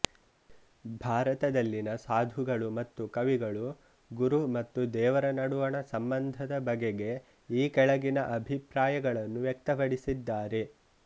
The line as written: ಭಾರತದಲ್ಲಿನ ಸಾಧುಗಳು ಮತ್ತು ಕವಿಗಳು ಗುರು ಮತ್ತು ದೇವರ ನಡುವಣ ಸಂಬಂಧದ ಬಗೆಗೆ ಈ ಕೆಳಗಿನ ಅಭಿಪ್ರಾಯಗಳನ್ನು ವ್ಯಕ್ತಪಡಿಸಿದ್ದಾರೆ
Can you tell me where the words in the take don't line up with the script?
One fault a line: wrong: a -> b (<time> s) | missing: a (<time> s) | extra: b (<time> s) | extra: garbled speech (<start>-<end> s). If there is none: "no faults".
no faults